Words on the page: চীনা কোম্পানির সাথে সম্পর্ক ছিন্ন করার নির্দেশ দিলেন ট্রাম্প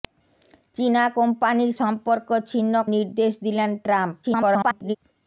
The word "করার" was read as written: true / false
false